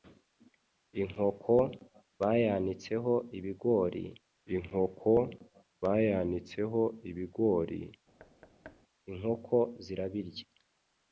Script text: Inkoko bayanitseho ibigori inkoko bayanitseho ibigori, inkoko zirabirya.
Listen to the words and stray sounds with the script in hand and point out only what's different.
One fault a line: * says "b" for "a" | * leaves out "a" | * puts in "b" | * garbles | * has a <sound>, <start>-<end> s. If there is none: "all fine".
* has a thud, 8.2-8.8 s